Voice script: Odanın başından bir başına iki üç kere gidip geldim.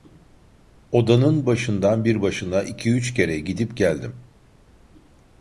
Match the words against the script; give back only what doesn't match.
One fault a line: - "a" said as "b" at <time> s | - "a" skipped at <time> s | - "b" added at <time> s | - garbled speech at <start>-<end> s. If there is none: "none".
none